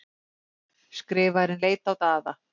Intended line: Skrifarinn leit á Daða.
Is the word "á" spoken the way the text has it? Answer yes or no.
yes